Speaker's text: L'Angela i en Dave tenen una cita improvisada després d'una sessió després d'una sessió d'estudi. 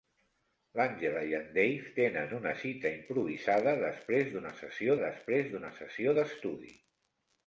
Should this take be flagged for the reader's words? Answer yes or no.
no